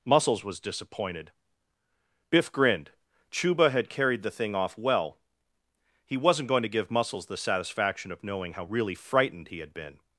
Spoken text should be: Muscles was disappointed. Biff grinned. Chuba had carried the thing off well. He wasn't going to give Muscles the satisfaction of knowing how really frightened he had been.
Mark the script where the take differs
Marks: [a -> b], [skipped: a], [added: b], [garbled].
Muscles was disappointed. Biff grinned. Chuba had carried the thing off well. He wasn't going to give Muscles the satisfaction of knowing how really frightened he had been.